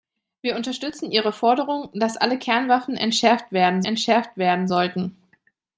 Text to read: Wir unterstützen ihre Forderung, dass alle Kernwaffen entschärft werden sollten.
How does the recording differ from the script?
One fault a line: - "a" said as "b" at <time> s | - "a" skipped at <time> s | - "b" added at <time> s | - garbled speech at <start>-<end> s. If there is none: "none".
- "entschärft werden" added at 3.8 s